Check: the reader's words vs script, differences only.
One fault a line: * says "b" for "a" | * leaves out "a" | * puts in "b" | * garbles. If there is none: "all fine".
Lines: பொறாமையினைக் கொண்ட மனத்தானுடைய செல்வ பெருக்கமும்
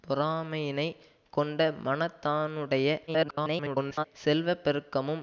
* garbles